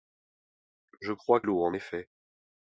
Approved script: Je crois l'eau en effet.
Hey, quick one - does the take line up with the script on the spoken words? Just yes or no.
yes